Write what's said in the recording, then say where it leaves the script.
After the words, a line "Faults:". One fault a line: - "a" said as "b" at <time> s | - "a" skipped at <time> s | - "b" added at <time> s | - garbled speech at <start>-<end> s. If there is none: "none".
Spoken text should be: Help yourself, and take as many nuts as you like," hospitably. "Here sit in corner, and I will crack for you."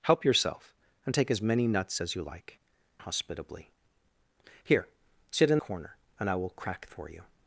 Help yourself, and take as many nuts as you like," hospitably. "Here sit in corner, and I will crack for you."
Faults:
none